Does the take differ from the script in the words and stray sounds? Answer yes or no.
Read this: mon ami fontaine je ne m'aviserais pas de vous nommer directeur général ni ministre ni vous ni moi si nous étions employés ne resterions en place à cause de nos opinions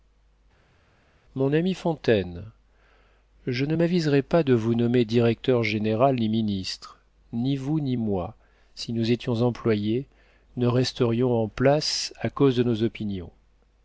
no